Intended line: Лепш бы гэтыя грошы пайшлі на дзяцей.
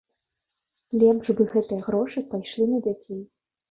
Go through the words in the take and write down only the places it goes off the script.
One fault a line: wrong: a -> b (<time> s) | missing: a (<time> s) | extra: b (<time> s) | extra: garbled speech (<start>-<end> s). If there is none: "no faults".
no faults